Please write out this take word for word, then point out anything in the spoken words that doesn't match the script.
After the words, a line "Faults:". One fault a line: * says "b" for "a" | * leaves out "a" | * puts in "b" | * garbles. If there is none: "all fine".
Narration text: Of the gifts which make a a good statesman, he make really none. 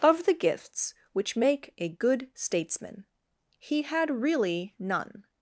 Of the gifts which make a good statesman, he had really none.
Faults:
* leaves out "a"
* says "had" for "make"